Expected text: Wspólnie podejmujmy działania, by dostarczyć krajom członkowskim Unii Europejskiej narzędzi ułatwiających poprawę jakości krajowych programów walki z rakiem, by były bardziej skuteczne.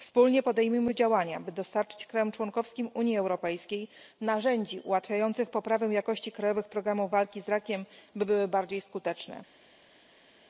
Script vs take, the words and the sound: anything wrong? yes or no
no